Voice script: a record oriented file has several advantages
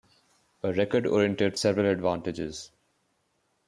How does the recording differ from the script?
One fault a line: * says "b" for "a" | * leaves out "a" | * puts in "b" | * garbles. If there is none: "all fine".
* leaves out "file has"